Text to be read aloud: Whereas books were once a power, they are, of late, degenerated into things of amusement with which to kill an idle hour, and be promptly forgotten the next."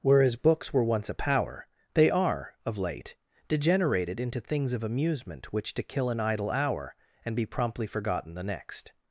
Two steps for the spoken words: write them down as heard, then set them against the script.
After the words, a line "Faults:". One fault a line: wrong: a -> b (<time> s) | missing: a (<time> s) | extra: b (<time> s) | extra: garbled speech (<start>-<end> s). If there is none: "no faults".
Whereas books were once a power, they are, of late, degenerated into things of amusement which to kill an idle hour, and be promptly forgotten the next."
Faults:
missing: with (5.5 s)